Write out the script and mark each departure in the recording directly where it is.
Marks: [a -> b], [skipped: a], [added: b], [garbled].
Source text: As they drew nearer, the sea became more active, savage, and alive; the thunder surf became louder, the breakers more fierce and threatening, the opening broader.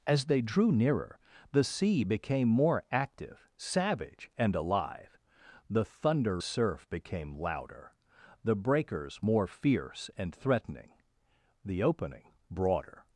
As they drew nearer, the sea became more active, savage, and alive; the thunder surf became louder, the breakers more fierce and threatening, the opening broader.